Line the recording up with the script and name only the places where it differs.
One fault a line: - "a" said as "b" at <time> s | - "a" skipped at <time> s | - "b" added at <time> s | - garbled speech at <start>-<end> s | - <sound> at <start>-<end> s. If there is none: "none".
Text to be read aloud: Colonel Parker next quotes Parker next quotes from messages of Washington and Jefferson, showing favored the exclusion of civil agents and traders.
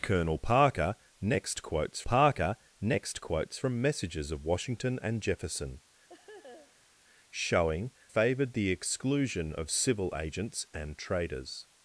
- laugh at 6.1-6.9 s